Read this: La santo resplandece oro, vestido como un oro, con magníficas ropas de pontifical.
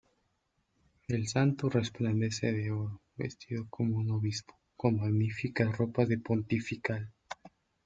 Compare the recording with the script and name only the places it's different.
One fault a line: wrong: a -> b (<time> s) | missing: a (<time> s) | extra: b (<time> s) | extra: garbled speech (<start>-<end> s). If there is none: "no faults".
wrong: La -> El (1.1 s)
extra: de (2.5 s)
wrong: oro -> obispo (4.1 s)